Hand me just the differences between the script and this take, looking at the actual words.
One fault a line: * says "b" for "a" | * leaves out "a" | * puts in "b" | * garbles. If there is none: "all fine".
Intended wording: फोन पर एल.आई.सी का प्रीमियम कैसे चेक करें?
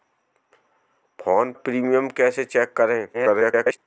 * leaves out "पर एल.आई.सी का"
* garbles